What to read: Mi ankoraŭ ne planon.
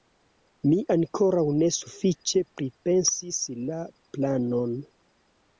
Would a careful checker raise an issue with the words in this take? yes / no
yes